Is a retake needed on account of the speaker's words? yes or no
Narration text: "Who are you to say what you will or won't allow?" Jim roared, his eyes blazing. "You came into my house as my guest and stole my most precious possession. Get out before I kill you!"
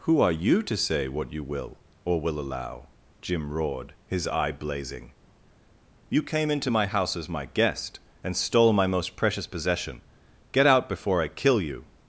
yes